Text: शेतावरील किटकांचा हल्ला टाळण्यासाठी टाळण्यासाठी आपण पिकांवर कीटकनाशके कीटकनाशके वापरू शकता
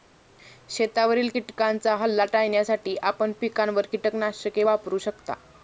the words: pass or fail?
fail